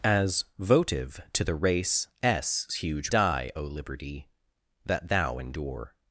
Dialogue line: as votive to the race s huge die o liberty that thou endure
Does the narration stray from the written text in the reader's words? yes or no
no